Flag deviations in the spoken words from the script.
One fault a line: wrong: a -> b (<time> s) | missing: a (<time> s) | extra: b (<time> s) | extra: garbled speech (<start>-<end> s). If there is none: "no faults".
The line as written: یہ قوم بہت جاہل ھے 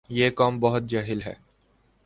no faults